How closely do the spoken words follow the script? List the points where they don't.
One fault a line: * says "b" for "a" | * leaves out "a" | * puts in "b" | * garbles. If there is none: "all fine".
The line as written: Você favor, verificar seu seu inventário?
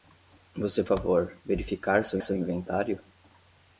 all fine